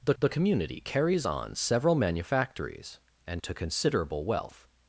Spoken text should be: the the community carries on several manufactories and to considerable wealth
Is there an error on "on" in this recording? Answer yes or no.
no